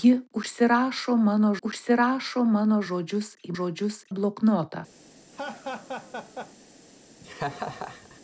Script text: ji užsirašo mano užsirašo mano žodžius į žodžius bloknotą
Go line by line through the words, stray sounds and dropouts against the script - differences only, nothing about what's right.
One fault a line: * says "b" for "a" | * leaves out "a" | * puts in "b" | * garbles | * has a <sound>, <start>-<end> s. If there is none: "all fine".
* has a laugh, 5.3-6.5 s
* has a laugh, 7.2-8.2 s